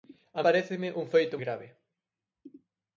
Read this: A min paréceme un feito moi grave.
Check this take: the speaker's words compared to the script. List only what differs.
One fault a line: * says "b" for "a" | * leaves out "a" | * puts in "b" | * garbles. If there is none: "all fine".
* leaves out "min"
* leaves out "moi"